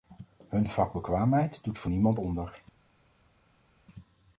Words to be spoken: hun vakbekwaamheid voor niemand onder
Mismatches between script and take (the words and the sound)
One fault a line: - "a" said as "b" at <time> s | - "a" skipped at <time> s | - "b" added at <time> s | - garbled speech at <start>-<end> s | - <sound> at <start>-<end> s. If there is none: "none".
- "doet" added at 1.6 s